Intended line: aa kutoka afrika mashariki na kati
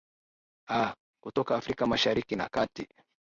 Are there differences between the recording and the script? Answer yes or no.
no